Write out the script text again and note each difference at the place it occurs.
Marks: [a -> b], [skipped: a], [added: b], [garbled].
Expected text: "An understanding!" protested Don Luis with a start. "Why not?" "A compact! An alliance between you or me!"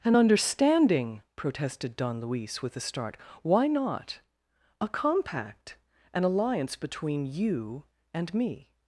"An understanding!" protested Don Luis with a start. "Why not?" "A compact! An alliance between you [or -> and] me!"